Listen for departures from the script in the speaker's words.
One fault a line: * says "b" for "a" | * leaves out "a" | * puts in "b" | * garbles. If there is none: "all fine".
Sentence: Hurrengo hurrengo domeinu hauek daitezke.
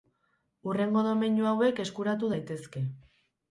* leaves out "hurrengo"
* puts in "eskuratu"